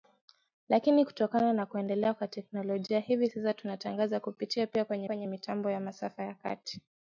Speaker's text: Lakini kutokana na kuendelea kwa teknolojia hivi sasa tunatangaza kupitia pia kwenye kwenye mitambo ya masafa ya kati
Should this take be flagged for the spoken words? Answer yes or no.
no